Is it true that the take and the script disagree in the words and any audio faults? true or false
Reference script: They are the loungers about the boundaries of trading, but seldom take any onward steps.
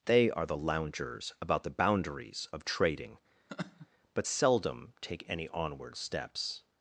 true